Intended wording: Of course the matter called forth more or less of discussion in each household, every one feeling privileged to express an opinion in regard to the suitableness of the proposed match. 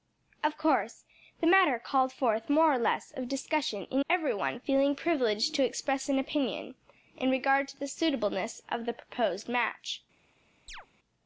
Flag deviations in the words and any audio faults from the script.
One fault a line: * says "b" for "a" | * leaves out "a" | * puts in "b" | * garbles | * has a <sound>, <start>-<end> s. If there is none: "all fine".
* leaves out "each household"
* has a chirp, 10.7-10.9 s